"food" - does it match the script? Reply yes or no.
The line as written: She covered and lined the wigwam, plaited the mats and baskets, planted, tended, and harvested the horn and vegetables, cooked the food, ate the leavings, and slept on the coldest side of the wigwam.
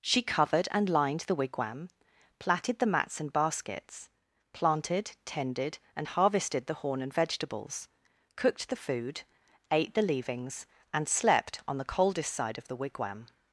yes